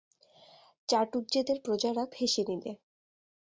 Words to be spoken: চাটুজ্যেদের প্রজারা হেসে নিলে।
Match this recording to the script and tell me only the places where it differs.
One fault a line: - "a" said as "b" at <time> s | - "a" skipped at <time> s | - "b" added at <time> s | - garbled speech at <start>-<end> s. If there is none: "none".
none